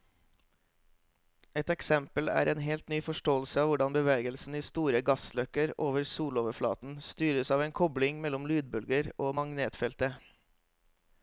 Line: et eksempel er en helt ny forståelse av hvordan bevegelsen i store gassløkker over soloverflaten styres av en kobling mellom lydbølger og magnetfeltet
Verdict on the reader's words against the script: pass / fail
pass